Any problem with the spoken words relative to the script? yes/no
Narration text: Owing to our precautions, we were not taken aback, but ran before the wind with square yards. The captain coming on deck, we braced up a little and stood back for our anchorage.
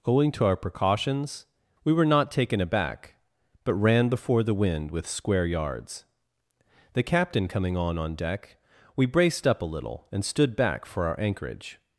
yes